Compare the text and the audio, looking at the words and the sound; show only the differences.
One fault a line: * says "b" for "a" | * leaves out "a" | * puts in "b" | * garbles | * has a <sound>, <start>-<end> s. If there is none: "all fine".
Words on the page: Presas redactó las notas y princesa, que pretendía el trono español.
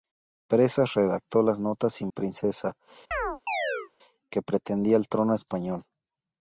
* has a chirp, 3.1-3.9 s